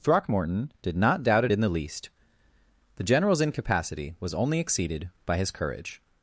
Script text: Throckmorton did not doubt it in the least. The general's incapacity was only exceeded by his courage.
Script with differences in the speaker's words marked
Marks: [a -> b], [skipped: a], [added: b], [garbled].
Throckmorton did not doubt it in the least. The general's incapacity was only exceeded by his courage.